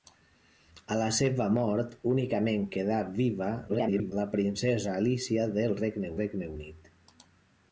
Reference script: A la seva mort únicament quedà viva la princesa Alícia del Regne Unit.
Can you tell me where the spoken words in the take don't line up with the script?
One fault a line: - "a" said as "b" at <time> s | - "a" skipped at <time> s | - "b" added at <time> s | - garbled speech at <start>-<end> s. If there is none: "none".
- garbled speech at 3.7-4.1 s
- "Regne" added at 6.2 s